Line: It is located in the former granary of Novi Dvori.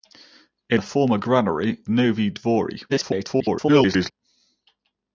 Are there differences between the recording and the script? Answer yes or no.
yes